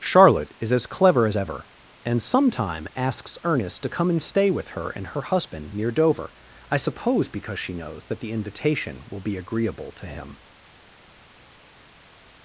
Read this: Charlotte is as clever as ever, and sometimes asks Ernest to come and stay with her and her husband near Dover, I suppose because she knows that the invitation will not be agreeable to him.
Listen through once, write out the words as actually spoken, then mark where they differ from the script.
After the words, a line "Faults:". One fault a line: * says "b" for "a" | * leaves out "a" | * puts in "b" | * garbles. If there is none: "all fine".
Charlotte is as clever as ever, and sometime asks Ernest to come and stay with her and her husband near Dover, I suppose because she knows that the invitation will be agreeable to him.
Faults:
* says "sometime" for "sometimes"
* leaves out "not"